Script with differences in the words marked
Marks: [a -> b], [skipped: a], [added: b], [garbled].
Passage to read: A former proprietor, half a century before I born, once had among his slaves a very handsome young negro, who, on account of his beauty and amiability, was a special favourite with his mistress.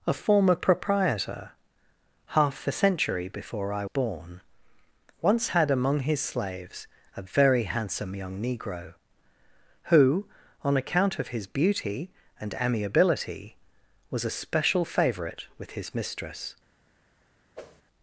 A former proprietor, half a century before I born, once had among his slaves a very handsome young negro, who, on account of his beauty and amiability, was a special favourite with his mistress.